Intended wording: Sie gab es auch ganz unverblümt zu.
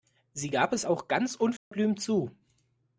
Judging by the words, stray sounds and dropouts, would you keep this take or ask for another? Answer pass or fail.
fail